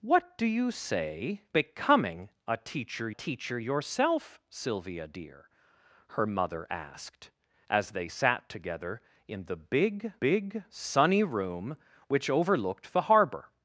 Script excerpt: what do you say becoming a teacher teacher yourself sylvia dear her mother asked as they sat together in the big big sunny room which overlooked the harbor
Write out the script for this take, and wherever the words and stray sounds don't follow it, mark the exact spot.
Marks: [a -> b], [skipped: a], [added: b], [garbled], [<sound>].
what do you say becoming a teacher teacher yourself sylvia dear her mother asked as they sat together in the big big sunny room which overlooked the harbor